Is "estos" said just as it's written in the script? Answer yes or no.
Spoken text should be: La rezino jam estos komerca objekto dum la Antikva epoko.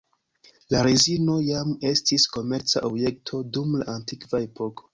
no